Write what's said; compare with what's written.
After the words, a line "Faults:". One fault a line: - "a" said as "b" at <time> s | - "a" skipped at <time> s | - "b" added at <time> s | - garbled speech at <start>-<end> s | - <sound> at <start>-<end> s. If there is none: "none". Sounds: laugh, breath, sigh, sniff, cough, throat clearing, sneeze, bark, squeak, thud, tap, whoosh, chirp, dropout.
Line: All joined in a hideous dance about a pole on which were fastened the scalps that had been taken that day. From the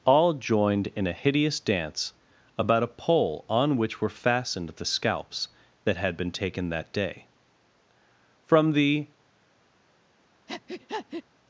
All joined in a hideous dance about a pole on which were fastened the scalps that had been taken that day. From the
Faults:
- breath at 10.5-11.2 s